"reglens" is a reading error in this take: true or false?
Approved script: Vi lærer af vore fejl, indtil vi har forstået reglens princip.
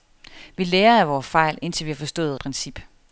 true